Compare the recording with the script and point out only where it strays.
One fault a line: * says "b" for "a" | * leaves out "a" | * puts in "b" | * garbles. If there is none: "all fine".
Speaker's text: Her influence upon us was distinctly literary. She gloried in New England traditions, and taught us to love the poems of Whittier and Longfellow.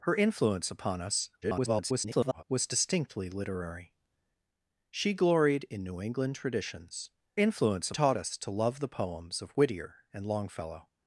* garbles
* says "influence" for "and"